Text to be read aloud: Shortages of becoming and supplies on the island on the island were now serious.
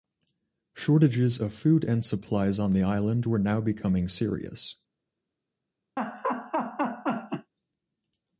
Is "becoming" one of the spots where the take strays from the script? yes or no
yes